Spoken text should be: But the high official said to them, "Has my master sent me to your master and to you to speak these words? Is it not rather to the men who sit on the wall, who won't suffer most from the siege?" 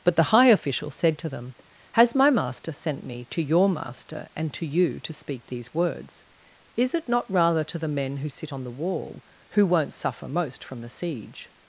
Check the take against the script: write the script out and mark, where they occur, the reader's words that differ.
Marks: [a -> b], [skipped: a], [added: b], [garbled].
But the high official said to them, "Has my master sent me to your master and to you to speak these words? Is it not rather to the men who sit on the wall, who won't suffer most from the siege?"